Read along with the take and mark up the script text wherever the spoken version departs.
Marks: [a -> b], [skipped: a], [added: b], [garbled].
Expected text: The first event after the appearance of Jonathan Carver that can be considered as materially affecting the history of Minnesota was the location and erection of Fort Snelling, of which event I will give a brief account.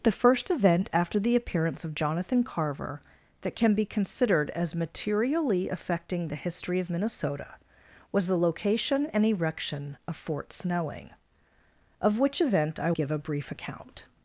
The first event after the appearance of Jonathan Carver that can be considered as materially affecting the history of Minnesota was the location and erection of Fort Snelling, of which event I [skipped: will] give a brief account.